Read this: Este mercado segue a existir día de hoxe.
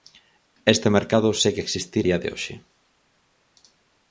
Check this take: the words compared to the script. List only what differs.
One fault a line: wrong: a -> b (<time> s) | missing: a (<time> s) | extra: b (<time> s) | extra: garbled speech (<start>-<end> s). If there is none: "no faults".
no faults